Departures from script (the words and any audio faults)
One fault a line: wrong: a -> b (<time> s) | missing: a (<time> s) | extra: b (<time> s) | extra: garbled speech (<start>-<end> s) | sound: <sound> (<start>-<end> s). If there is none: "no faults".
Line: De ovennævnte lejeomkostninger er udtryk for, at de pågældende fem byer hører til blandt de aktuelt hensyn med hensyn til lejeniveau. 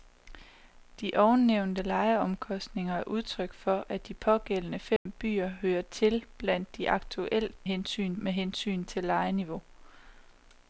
sound: dropout (5.0-5.1 s)